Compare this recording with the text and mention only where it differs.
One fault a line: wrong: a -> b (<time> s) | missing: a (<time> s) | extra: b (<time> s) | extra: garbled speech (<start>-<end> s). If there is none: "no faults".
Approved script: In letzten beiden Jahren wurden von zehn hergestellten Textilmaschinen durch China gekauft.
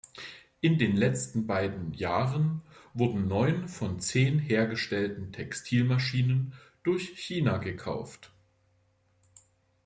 extra: den (0.8 s)
extra: neun (3.3 s)